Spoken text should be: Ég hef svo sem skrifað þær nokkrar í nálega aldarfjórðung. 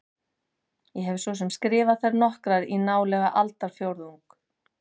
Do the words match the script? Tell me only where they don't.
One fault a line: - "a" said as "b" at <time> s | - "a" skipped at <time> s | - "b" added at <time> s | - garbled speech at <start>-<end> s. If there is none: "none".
none